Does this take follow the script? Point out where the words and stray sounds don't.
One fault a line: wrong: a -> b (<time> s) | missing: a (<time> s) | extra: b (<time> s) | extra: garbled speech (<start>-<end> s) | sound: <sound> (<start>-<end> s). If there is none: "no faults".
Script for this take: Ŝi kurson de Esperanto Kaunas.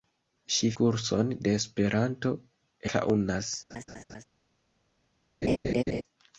sound: laugh (3.7-4.2 s)
sound: laugh (5.4-6.0 s)